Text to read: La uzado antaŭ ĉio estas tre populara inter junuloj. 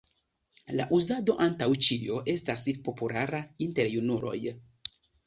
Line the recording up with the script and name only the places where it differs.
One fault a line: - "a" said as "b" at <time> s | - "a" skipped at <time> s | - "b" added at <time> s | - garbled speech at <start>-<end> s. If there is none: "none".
- "tre" skipped at 2.6 s